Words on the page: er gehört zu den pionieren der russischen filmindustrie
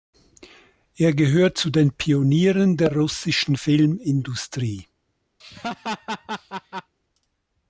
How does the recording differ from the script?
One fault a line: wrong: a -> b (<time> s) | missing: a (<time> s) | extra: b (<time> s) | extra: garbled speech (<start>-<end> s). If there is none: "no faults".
no faults